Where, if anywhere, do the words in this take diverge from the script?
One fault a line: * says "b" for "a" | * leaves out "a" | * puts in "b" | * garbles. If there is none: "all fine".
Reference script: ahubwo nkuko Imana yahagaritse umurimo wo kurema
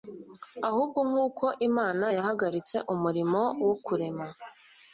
all fine